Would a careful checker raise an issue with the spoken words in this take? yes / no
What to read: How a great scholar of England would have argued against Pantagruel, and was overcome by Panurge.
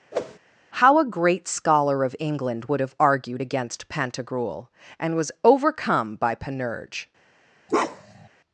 no